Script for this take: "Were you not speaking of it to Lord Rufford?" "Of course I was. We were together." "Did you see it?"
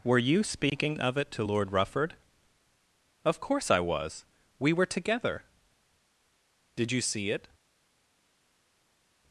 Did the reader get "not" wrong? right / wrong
wrong